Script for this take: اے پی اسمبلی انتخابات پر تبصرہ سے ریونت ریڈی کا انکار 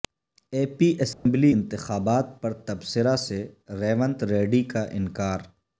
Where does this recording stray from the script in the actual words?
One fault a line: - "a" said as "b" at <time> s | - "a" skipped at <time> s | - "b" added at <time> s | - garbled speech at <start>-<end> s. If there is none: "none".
none